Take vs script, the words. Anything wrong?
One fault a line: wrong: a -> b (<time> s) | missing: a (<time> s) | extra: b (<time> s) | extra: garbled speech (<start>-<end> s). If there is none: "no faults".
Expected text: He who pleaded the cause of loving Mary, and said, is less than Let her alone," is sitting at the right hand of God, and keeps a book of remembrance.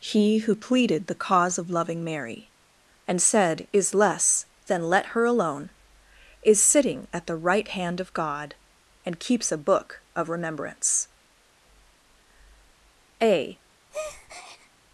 extra: A (13.2 s)